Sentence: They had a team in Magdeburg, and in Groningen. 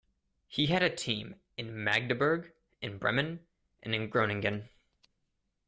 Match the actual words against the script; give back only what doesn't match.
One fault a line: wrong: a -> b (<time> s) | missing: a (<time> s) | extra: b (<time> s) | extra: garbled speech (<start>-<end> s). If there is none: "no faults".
wrong: They -> He (0.5 s)
extra: in Bremen (2.8 s)